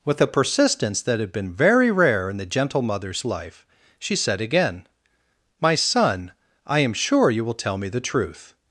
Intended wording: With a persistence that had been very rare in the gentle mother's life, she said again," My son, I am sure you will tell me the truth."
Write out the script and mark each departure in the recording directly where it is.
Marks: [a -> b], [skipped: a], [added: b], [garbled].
With a persistence that had been very rare in the gentle mother's life, she said again," My son, I am sure you will tell me the truth."